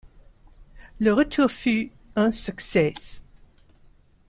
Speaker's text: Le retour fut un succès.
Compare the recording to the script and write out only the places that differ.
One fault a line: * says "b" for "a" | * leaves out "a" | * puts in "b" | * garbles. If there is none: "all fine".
all fine